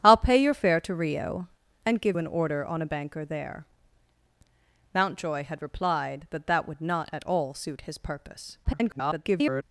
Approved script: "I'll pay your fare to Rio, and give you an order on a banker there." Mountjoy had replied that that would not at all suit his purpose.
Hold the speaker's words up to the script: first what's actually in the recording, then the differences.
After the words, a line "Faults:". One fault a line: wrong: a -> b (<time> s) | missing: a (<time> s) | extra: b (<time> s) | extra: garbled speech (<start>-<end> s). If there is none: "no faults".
"I'll pay your fare to Rio, and give an order on a banker there." Mountjoy had replied that that would not at all suit his purpose. [garbled]
Faults:
missing: you (2.2 s)
extra: garbled speech (8.6-9.6 s)